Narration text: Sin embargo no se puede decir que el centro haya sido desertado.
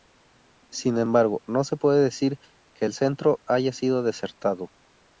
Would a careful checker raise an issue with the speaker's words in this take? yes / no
no